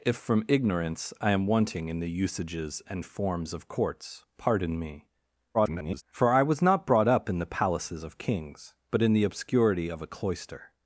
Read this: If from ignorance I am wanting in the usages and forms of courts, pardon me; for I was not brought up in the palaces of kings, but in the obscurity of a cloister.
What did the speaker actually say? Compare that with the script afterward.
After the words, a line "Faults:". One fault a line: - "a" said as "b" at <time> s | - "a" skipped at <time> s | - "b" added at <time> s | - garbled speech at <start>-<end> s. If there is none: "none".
If from ignorance I am wanting in the usages and forms of courts, pardon me; [garbled] for I was not brought up in the palaces of kings, but in the obscurity of a cloister.
Faults:
- garbled speech at 5.5-6.0 s